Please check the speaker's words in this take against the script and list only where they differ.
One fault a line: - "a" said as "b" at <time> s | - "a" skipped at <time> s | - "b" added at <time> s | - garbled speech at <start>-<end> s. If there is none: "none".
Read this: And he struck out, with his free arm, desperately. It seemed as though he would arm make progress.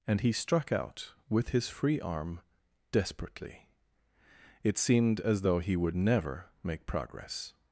- "arm" said as "never" at 5.9 s